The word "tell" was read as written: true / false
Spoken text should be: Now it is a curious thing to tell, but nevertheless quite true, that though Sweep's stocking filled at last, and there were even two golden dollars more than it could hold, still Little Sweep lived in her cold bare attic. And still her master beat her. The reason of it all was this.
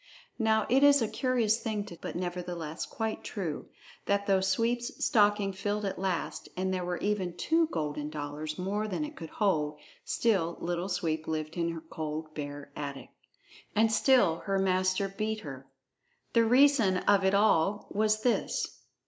false